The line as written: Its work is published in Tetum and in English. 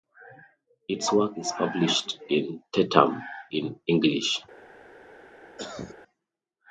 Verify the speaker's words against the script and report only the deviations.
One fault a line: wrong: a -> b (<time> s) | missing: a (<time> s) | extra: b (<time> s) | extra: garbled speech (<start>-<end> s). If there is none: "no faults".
missing: and (3.2 s)